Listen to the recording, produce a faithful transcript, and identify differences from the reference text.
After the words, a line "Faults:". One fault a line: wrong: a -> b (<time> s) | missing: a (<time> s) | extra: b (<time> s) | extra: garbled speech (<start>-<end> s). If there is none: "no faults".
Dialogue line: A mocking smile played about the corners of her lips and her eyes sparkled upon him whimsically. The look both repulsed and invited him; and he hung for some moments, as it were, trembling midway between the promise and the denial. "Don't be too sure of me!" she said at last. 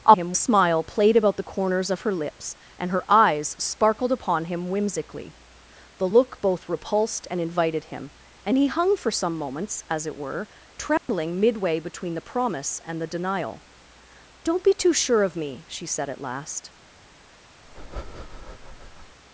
A him smile played about the corners of her lips and her eyes sparkled upon him whimsically. The look both repulsed and invited him; and he hung for some moments, as it were, trembling midway between the promise and the denial. "Don't be too sure of me!" she said at last.
Faults:
wrong: mocking -> him (0.1 s)